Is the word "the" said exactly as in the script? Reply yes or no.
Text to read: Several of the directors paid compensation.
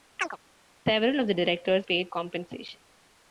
yes